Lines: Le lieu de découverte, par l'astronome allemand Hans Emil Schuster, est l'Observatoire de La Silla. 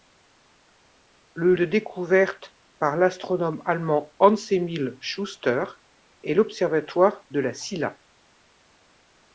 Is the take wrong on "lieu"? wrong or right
wrong